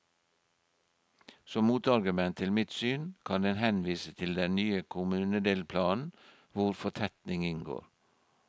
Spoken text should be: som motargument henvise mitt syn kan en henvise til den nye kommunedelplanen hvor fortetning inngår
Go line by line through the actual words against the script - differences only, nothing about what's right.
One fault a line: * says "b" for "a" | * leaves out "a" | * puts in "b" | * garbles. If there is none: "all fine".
* says "til" for "henvise"